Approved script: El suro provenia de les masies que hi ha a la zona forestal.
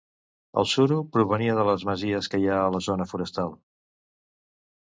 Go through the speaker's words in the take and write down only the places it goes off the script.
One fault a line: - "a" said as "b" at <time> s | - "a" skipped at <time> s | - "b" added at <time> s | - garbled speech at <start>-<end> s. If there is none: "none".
none